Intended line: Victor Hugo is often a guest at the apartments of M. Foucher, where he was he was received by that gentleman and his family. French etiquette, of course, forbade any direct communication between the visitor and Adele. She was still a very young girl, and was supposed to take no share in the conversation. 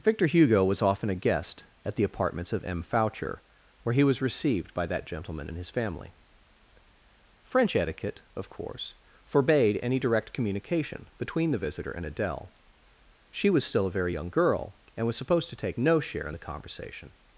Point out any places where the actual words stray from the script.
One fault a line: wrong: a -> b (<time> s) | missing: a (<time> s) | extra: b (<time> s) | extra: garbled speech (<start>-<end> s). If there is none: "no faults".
wrong: is -> was (0.7 s)
missing: he was (4.2 s)